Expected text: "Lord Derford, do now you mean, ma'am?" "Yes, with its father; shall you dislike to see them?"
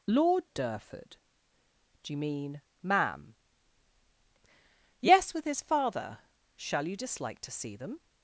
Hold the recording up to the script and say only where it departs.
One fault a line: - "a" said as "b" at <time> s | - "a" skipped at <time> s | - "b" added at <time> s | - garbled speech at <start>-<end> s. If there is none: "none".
- "now" skipped at 2.1 s
- "its" said as "his" at 5.4 s